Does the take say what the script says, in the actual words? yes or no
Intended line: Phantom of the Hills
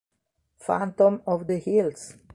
yes